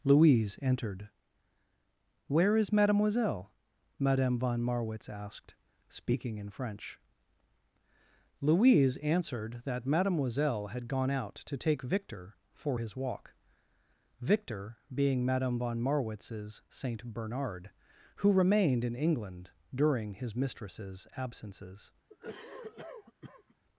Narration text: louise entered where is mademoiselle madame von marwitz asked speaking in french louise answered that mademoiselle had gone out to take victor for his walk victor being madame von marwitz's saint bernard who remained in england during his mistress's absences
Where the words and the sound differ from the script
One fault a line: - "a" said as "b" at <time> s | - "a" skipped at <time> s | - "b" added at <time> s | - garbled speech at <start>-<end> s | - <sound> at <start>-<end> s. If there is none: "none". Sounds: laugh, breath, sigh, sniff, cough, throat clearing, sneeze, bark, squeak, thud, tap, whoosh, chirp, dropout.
- cough at 22.1-23.5 s